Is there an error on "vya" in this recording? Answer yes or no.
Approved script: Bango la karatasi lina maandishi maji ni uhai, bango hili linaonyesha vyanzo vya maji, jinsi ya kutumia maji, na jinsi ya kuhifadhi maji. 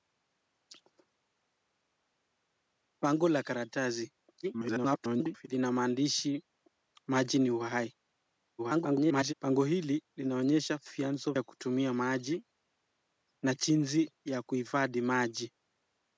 yes